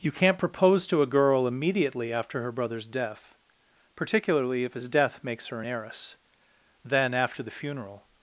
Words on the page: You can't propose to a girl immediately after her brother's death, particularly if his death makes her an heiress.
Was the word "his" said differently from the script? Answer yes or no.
no